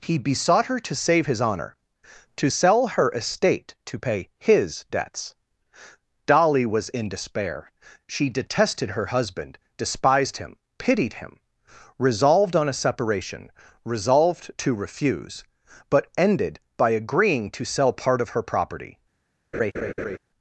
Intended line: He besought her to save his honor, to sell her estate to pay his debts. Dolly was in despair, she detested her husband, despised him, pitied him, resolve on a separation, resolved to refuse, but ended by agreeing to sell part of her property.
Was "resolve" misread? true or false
true